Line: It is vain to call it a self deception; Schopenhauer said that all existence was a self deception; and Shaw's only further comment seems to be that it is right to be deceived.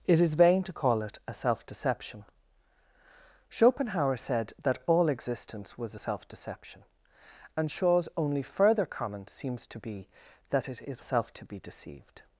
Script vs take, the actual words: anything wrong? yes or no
yes